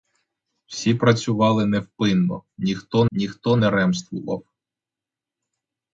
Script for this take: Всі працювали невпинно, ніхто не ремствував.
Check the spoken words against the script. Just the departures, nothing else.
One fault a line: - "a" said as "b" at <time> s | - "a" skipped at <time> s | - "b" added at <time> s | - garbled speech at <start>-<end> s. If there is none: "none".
- "ніхто" added at 3.1 s